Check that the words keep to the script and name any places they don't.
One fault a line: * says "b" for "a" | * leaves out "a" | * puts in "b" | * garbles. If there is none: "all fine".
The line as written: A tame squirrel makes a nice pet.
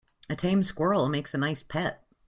all fine